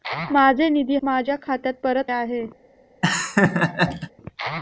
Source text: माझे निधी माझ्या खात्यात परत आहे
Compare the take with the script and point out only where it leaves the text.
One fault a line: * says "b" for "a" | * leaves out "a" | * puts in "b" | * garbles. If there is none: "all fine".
all fine